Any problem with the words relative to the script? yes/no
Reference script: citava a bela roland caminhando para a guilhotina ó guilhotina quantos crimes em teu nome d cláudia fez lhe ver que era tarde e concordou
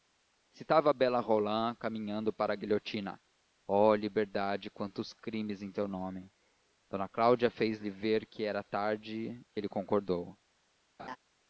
yes